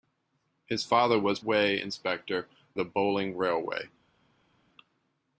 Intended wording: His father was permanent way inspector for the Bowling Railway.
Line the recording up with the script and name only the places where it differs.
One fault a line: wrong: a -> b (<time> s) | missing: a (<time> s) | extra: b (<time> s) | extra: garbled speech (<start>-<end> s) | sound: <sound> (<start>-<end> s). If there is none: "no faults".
missing: permanent (1.4 s)
missing: for (2.5 s)